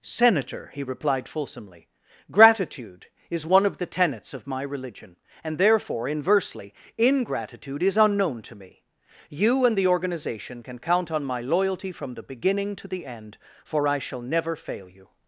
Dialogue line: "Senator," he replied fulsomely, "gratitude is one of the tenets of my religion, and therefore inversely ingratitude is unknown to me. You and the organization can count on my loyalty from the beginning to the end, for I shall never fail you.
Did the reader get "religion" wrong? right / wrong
right